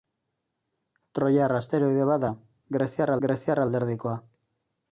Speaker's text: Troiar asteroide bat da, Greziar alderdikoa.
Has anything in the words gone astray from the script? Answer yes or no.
yes